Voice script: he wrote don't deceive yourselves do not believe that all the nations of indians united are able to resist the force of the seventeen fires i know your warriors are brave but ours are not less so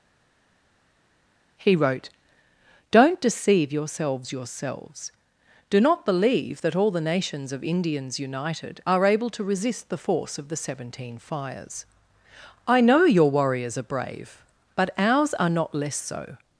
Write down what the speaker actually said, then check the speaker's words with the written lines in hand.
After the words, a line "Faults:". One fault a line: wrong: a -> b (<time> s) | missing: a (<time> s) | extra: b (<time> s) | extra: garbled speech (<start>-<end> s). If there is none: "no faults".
he wrote don't deceive yourselves yourselves do not believe that all the nations of indians united are able to resist the force of the seventeen fires i know your warriors are brave but ours are not less so
Faults:
extra: yourselves (4.3 s)